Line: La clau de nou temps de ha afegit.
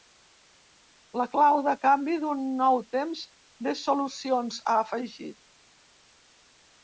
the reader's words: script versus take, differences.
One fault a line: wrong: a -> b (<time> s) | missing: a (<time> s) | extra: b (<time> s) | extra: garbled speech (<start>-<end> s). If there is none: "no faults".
extra: canvi d'un (1.8 s)
extra: solucions (3.8 s)